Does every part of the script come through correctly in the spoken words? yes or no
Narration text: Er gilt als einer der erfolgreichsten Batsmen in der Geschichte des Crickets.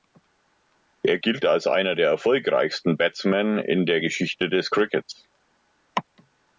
yes